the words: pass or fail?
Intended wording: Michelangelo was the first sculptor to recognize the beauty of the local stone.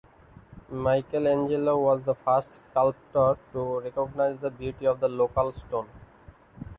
pass